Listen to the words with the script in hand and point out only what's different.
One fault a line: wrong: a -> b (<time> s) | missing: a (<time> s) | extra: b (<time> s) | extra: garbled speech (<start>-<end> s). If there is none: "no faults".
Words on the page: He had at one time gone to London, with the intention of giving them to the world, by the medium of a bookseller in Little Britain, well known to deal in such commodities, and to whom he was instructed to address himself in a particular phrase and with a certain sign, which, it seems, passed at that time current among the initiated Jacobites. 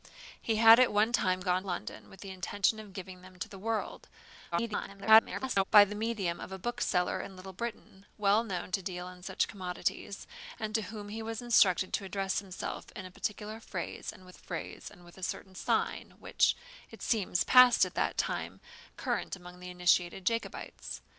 missing: to (1.6 s)
extra: garbled speech (4.5-5.6 s)
extra: phrase and with (14.4 s)